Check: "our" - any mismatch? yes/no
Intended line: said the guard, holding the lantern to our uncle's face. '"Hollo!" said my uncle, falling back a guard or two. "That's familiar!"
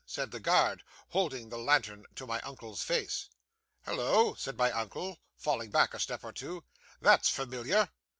yes